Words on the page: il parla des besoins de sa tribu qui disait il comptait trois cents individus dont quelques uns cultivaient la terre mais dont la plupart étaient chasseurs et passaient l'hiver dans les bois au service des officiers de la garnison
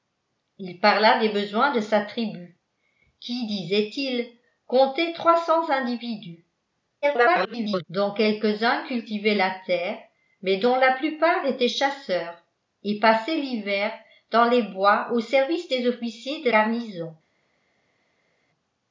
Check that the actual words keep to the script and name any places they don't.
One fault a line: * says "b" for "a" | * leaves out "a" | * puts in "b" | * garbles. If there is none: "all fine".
* garbles
* leaves out "la"